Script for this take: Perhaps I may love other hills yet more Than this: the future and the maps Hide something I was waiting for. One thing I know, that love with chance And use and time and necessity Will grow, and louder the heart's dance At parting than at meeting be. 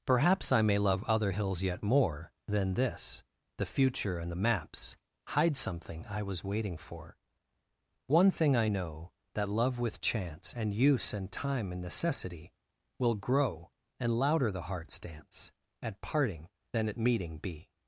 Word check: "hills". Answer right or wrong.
right